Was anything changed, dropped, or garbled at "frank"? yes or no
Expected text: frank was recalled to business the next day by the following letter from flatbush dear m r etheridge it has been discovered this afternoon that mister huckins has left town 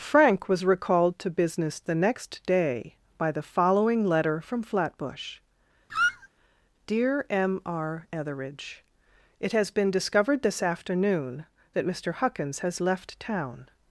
no